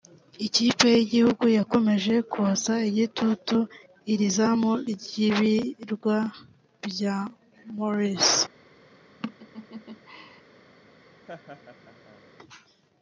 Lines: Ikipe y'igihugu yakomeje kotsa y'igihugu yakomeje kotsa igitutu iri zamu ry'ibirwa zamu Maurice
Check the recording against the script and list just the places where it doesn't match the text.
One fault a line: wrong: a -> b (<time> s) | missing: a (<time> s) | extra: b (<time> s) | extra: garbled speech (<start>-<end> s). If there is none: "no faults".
missing: y'igihugu yakomeje kotsa (2.7 s)
wrong: zamu -> bya (6.9 s)